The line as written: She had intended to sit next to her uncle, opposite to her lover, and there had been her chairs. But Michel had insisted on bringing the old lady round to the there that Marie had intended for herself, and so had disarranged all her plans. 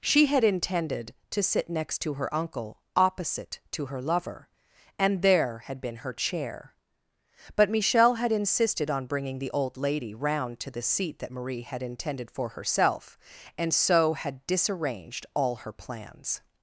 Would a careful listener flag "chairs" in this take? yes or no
yes